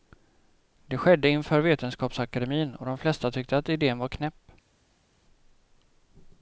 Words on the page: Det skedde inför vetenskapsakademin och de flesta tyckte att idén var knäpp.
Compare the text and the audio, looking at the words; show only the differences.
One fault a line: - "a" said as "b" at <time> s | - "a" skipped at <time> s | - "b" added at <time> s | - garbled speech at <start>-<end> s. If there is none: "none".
none